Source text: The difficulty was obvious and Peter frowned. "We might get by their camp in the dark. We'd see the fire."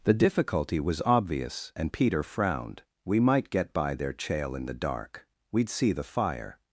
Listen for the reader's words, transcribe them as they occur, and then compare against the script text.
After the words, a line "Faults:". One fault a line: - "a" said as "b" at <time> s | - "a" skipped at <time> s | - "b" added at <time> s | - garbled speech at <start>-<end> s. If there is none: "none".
The difficulty was obvious and Peter frowned. "We might get by their chail in the dark. We'd see the fire."
Faults:
- "camp" said as "chail" at 4.1 s